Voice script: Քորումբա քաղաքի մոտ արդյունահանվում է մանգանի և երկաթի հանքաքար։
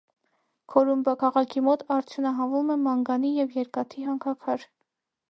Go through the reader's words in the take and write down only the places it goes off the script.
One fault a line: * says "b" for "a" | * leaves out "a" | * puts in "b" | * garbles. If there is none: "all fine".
all fine